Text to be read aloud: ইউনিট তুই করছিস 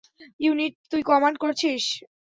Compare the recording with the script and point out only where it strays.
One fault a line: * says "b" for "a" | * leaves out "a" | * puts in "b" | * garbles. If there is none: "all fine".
* puts in "কমান্ড"